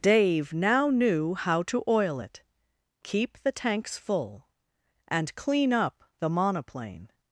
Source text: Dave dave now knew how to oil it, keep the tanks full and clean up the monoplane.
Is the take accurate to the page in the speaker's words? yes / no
no